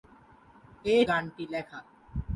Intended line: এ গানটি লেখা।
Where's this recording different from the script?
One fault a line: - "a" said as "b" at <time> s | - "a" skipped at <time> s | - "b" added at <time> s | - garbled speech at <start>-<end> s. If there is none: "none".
none